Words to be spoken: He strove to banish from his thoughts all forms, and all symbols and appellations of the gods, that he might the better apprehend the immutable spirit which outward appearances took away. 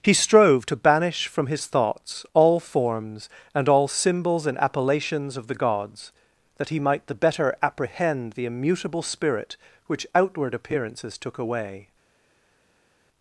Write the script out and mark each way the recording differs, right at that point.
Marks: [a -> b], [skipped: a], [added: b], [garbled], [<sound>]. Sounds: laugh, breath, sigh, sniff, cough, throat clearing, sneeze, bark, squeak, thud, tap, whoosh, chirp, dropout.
He strove to banish from his thoughts all forms, and all symbols and appellations of the gods, that he might the better apprehend the immutable spirit which outward appearances took away.